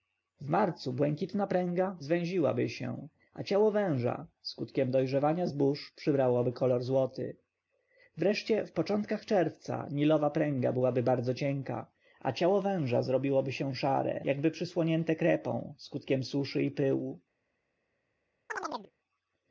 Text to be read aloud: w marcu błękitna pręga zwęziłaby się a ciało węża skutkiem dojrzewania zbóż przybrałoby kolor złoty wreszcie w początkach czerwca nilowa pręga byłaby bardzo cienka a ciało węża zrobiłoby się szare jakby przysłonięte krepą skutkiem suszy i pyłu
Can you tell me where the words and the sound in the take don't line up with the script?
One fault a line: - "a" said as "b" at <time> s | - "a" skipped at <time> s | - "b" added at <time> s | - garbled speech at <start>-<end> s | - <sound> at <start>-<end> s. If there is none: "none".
- chirp at 18.5-18.9 s